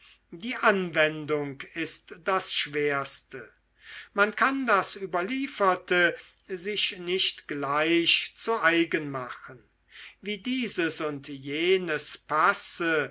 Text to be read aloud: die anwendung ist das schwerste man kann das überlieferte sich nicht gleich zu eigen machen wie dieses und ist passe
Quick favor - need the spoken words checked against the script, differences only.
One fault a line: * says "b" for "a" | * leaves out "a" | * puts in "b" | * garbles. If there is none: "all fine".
* says "jenes" for "ist"